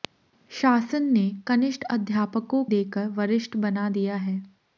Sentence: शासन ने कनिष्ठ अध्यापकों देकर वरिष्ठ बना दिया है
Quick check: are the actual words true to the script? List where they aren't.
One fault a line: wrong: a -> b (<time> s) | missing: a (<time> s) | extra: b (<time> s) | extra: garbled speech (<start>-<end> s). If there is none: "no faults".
no faults